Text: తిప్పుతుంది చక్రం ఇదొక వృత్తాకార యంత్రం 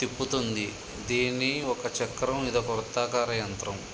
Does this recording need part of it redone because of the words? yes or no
yes